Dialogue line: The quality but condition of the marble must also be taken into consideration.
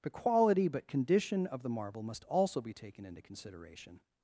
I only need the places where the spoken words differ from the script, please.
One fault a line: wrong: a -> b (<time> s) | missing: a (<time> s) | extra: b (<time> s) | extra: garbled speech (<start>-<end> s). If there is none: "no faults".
no faults